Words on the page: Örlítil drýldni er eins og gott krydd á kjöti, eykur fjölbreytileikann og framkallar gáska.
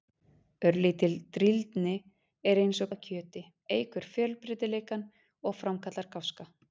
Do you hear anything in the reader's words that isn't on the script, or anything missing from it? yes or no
yes